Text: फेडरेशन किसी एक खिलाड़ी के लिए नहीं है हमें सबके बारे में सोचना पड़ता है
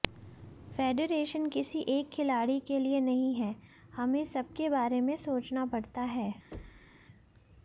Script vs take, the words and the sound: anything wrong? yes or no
yes